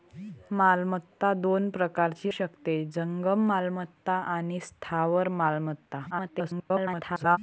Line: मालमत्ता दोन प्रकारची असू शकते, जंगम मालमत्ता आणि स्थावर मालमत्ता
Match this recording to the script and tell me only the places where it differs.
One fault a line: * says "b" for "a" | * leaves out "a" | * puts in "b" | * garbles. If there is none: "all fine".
* leaves out "असू"
* garbles